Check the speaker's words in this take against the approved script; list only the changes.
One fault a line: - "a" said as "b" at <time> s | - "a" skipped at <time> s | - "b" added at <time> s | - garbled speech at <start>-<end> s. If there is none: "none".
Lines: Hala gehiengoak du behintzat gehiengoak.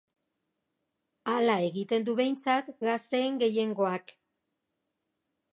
- "gehiengoak" said as "egiten" at 1.7 s
- "gazteen" added at 2.9 s